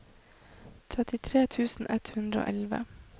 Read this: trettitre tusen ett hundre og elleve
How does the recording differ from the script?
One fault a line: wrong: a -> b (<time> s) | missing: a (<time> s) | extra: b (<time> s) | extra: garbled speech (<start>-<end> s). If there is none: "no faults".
no faults